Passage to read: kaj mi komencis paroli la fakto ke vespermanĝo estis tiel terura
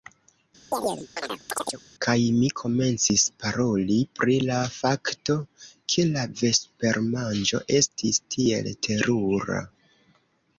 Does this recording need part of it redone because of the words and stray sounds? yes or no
yes